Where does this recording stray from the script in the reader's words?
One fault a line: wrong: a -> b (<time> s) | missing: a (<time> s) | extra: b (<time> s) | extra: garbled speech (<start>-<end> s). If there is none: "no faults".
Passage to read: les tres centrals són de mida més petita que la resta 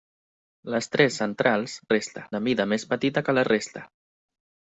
wrong: són -> resta (1.9 s)